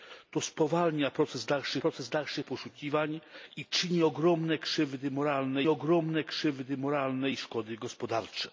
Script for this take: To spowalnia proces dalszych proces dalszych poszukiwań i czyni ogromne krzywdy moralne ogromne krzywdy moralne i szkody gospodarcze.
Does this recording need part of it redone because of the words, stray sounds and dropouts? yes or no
no